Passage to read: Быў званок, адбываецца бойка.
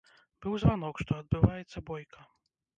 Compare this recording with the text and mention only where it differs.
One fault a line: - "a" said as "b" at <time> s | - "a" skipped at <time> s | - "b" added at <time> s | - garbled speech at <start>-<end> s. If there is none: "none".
- "што" added at 1.0 s